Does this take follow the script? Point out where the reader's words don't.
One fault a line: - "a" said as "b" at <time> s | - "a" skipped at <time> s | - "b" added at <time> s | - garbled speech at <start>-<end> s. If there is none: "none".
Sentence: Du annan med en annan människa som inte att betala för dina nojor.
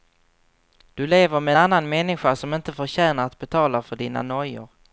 - "annan" said as "lever" at 1.1 s
- "förtjänar" added at 2.7 s